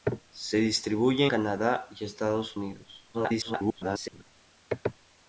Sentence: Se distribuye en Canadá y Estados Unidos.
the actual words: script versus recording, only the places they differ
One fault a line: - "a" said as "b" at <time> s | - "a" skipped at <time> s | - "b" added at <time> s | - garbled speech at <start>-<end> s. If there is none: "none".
- "en" skipped at 1.3 s
- garbled speech at 3.1-4.2 s